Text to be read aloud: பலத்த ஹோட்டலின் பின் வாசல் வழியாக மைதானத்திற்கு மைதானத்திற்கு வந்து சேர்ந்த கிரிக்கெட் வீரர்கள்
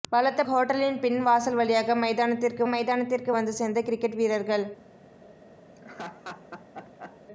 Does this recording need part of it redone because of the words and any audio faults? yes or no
yes